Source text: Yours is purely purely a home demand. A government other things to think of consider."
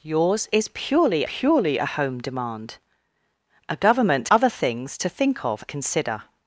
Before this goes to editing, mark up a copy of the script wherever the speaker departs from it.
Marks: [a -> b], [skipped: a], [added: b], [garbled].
Yours is purely purely a home demand. A government other things to think of consider."